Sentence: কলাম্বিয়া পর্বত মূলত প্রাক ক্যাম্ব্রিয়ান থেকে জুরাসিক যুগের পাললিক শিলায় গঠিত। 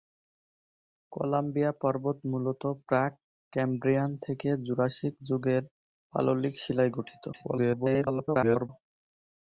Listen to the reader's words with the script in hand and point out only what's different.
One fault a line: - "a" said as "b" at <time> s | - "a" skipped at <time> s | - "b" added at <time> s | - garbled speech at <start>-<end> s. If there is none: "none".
- garbled speech at 7.3-8.7 s